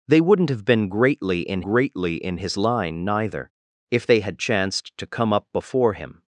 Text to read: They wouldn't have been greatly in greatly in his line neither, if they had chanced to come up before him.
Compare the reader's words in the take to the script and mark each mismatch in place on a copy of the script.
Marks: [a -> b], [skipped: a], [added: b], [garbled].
They wouldn't have been greatly in greatly in his line neither, if they had chanced to come up before him.